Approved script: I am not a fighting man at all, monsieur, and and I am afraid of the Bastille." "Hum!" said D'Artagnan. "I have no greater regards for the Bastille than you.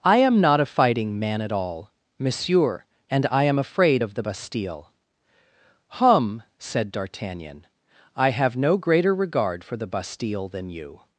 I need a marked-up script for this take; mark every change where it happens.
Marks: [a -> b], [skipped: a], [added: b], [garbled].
I am not a fighting man at all, monsieur, and [skipped: and] I am afraid of the Bastille." "Hum!" said D'Artagnan. "I have no greater [regards -> regard] for the Bastille than you.